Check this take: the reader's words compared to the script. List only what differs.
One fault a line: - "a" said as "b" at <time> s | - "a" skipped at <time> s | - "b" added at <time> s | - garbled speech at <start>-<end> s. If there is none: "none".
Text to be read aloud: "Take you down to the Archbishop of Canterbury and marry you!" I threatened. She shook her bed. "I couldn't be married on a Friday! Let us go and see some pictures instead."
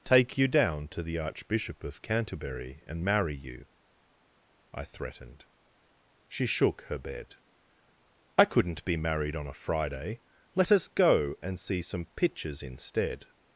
none